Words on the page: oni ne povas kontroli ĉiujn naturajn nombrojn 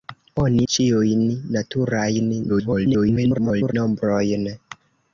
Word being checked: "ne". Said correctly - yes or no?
no